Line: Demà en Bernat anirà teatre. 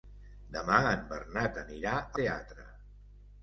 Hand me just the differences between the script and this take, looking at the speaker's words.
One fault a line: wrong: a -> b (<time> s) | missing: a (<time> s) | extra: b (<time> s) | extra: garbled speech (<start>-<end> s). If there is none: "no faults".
no faults